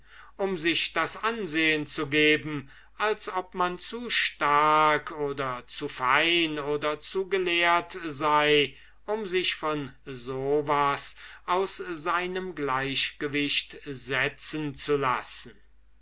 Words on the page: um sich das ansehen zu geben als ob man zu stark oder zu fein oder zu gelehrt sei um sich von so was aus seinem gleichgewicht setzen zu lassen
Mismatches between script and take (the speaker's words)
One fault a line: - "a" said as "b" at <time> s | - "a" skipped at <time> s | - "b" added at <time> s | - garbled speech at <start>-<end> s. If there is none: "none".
none